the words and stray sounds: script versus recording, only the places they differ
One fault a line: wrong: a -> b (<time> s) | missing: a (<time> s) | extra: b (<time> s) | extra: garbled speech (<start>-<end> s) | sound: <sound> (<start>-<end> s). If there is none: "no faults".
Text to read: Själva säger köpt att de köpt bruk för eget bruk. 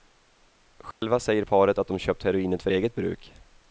sound: dropout (0.9-1.0 s)
wrong: köpt -> paret (1.4 s)
wrong: bruk -> heroinet (2.2 s)